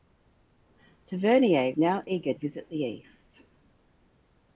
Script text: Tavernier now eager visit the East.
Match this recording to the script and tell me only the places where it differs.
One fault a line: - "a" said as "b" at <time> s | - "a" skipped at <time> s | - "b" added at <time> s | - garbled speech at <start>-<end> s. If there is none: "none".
none